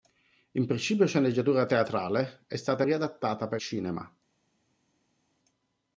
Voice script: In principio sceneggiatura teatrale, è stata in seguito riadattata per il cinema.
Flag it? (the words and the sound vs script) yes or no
yes